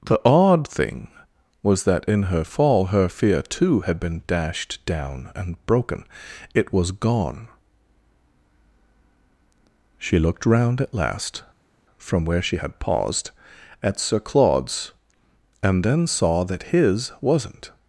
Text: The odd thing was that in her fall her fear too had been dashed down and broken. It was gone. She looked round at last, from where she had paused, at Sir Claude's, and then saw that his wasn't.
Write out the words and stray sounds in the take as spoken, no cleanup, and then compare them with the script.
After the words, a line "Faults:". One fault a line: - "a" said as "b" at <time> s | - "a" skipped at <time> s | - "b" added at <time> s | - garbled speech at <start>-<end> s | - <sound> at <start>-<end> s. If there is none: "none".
The odd thing was that in her fall her fear too had been dashed down and broken. It was gone. She looked round at last, from where she had paused, at Sir Claude's, and then saw that his wasn't.
Faults:
none